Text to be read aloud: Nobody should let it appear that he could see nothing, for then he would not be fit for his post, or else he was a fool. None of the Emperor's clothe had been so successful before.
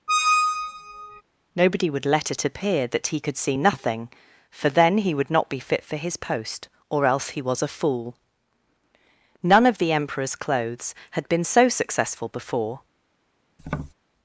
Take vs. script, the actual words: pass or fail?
fail